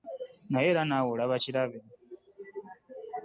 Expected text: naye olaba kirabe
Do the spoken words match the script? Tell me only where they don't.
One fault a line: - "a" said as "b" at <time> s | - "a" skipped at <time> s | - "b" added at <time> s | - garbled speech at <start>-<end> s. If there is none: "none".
- "era naawe" added at 0.7 s